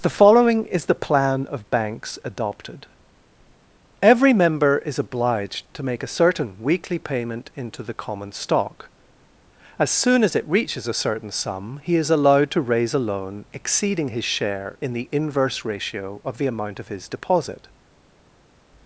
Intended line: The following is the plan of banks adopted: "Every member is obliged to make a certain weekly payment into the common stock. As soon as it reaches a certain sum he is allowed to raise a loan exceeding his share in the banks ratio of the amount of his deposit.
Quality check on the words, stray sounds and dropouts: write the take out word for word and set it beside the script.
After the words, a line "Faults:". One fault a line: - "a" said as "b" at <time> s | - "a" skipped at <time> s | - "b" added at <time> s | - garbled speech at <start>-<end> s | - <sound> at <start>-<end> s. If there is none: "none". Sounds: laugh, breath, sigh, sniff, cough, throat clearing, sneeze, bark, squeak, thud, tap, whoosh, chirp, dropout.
The following is the plan of banks adopted: "Every member is obliged to make a certain weekly payment into the common stock. As soon as it reaches a certain sum he is allowed to raise a loan exceeding his share in the inverse ratio of the amount of his deposit.
Faults:
- "banks" said as "inverse" at 15.1 s